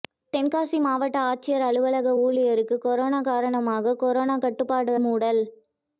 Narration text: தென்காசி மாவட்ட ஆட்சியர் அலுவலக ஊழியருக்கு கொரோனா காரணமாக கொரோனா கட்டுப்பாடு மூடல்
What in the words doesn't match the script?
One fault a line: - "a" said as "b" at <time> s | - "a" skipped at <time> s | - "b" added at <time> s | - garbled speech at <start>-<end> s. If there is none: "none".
none